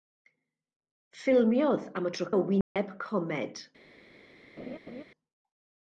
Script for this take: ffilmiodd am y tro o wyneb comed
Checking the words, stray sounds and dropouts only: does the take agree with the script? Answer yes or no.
no